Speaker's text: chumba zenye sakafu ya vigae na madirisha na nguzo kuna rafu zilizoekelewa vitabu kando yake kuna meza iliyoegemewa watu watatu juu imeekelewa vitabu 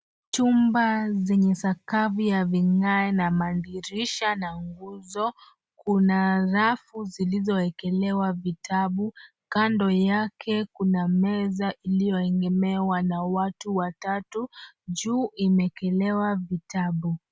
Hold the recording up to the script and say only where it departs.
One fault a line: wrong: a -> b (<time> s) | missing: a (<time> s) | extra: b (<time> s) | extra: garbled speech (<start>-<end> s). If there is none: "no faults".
extra: na (13.0 s)